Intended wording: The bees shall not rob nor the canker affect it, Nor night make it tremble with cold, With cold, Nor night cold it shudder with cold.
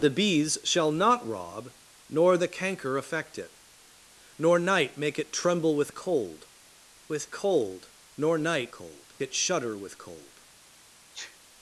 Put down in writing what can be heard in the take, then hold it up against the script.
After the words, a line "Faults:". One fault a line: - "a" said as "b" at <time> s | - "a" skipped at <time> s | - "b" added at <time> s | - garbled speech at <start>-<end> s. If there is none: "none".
The bees shall not rob nor the canker affect it, Nor night make it tremble with cold, With cold, Nor night cold it shudder with cold.
Faults:
none